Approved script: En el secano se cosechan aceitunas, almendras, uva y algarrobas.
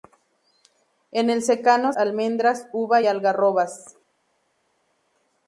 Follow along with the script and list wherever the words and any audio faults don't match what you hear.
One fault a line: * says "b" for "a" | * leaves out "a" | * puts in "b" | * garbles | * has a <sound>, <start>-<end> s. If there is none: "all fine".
* leaves out "se cosechan aceitunas"
* leaves out "y"